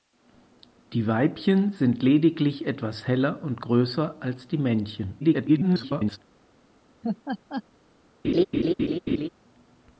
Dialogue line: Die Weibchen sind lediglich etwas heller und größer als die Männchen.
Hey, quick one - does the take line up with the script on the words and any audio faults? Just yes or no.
no